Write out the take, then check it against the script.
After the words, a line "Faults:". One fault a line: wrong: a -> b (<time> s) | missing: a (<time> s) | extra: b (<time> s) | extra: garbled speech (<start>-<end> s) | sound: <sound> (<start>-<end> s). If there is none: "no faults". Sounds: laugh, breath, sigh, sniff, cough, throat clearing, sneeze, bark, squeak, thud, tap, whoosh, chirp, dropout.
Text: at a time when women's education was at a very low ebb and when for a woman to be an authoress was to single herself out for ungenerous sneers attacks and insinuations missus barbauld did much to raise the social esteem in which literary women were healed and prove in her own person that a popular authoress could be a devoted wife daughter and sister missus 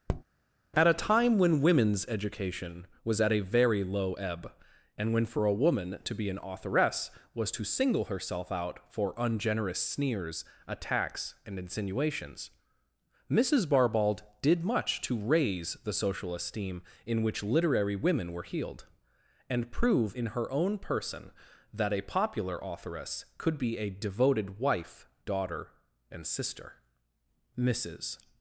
at a time when women's education was at a very low ebb and when for a woman to be an authoress was to single herself out for ungenerous sneers attacks and insinuations missus barbauld did much to raise the social esteem in which literary women were healed and prove in her own person that a popular authoress could be a devoted wife daughter and sister missus
Faults:
sound: tap (0.1-0.2 s)